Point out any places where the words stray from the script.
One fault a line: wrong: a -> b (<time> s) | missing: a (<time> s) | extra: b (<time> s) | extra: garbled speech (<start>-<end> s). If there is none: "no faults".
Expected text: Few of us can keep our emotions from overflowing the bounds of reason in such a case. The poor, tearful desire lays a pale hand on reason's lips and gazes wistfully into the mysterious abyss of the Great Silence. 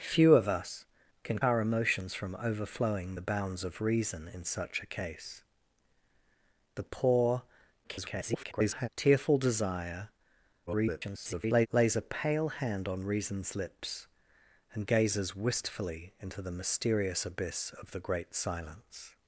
missing: keep (1.4 s)
extra: garbled speech (7.8-8.9 s)
extra: garbled speech (10.7-11.7 s)